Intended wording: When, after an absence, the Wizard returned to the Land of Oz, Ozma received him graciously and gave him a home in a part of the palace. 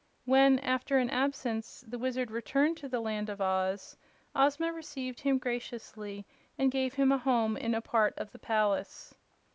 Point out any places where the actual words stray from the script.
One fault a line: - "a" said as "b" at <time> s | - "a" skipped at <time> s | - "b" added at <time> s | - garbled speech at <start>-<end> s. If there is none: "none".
none